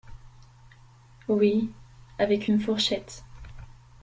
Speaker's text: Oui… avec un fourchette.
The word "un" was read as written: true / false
false